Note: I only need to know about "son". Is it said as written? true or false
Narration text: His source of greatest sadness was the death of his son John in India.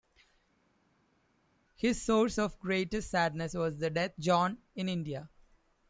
false